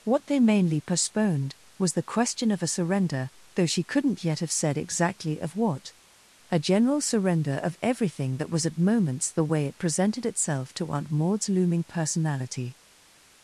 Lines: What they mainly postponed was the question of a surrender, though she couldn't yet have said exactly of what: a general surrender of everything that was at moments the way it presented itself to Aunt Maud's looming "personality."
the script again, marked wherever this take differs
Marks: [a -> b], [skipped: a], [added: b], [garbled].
What they mainly postponed was the question of a surrender, though she couldn't yet have said exactly of what: a general surrender of everything that was at moments the way it presented itself to Aunt Maud's looming "personality."